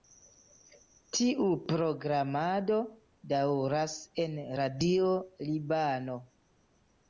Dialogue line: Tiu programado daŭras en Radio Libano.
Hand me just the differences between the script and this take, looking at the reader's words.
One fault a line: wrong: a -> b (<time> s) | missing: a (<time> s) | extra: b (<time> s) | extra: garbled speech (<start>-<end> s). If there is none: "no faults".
no faults